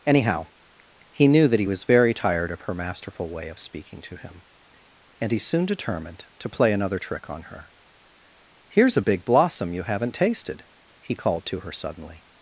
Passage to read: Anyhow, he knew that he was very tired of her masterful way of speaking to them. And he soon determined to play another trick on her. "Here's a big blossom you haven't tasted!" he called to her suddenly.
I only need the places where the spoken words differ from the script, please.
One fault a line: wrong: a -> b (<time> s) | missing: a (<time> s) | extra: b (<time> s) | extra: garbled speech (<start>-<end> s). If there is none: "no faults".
wrong: them -> him (4.2 s)